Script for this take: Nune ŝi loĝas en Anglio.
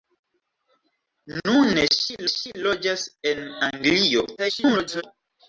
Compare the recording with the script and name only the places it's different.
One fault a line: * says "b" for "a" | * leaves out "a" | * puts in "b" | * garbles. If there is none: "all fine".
* puts in "ŝi"
* garbles